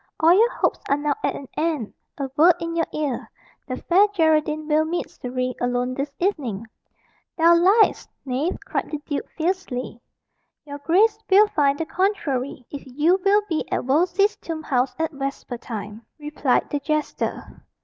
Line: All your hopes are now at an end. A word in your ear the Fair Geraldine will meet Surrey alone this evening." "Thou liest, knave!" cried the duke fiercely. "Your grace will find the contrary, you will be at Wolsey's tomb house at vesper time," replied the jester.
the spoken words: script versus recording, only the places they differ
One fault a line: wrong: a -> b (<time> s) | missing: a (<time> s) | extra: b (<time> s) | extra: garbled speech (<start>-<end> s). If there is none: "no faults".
extra: if (12.7 s)